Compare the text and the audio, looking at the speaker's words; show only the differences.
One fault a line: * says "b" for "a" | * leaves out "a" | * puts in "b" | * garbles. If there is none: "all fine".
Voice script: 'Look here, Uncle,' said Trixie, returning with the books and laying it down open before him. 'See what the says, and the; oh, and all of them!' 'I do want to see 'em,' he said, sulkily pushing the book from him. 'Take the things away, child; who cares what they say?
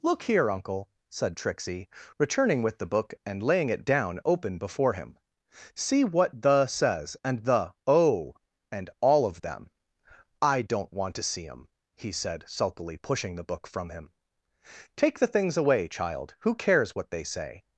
* says "book" for "books"
* says "don't" for "do"